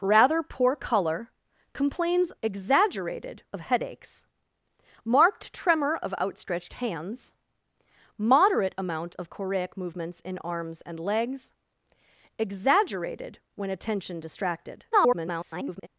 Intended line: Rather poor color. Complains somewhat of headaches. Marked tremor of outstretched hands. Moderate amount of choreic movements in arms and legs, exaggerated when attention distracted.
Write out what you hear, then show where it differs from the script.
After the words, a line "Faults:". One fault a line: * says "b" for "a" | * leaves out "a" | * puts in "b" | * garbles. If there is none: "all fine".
Rather poor color. Complains exaggerated of headaches. Marked tremor of outstretched hands. Moderate amount of choreic movements in arms and legs, exaggerated when attention distracted. [garbled]
Faults:
* says "exaggerated" for "somewhat"
* garbles